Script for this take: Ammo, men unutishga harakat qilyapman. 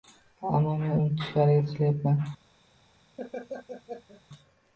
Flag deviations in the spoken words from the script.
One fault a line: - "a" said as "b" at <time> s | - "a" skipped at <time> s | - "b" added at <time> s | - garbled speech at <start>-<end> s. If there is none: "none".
none